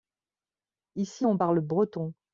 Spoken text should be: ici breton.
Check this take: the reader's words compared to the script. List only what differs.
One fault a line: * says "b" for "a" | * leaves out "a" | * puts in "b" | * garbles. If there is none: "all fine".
* puts in "on parle"